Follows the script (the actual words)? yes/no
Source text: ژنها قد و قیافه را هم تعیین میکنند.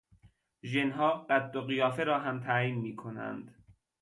yes